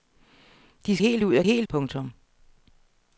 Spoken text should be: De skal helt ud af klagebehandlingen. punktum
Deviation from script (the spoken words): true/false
true